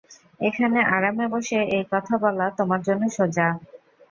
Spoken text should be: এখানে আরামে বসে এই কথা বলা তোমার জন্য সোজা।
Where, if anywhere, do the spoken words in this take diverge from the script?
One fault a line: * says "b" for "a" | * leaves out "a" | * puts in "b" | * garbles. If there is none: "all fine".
all fine